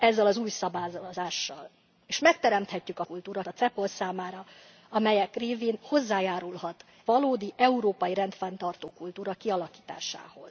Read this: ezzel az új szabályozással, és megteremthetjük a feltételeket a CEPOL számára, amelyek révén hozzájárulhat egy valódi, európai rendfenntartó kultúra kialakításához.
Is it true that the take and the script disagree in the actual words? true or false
true